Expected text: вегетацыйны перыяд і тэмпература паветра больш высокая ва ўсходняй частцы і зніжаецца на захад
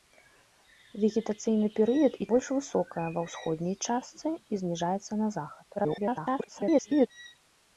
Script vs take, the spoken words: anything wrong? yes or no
yes